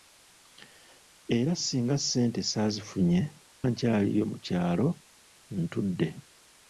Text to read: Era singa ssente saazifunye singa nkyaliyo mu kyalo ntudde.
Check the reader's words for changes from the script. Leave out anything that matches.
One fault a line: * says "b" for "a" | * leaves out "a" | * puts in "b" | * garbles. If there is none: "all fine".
* leaves out "singa"